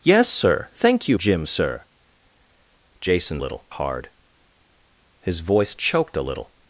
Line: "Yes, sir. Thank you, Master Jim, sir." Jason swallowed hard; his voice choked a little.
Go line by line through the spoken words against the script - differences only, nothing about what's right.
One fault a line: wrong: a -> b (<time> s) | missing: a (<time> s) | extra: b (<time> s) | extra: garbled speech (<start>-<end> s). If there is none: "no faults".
missing: Master (1.2 s)
wrong: swallowed -> little (3.4 s)